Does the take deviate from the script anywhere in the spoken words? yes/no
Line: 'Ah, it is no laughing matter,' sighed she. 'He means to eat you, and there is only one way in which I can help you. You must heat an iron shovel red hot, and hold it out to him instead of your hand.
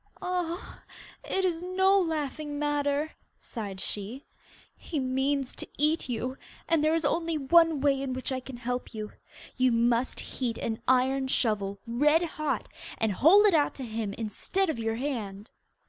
no